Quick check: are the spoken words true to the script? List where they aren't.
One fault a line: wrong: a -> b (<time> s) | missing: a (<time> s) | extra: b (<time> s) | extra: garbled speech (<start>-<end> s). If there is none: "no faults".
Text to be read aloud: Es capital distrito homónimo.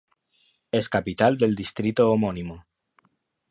extra: del (1.4 s)